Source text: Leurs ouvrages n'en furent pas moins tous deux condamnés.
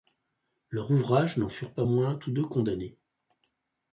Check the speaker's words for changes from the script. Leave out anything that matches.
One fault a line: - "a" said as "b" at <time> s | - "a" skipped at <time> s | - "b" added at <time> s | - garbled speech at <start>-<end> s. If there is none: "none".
none